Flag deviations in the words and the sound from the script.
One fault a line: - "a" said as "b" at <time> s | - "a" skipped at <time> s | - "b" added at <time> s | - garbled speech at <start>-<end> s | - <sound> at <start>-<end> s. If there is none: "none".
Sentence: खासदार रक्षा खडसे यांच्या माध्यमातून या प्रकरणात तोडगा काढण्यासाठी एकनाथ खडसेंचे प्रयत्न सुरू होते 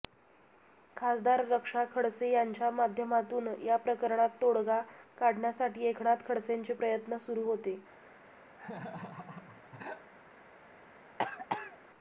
- laugh at 8.5-10.1 s
- cough at 11.2-11.8 s